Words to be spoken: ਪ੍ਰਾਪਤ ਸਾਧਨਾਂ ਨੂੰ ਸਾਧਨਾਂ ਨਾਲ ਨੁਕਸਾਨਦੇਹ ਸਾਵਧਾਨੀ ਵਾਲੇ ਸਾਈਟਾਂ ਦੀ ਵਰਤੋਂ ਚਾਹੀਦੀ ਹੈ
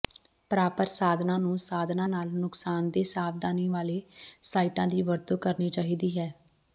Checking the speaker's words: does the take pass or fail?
fail